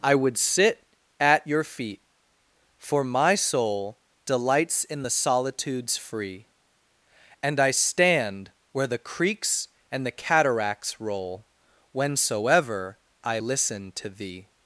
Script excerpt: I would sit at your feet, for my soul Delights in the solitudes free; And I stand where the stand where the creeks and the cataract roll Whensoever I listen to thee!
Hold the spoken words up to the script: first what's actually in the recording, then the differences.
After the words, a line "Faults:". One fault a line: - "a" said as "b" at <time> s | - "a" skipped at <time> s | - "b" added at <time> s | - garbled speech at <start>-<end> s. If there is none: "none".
I would sit at your feet, for my soul Delights in the solitudes free; And I stand where the creeks and the cataracts roll Whensoever I listen to thee!
Faults:
- "stand where the" skipped at 9.0 s
- "cataract" said as "cataracts" at 10.1 s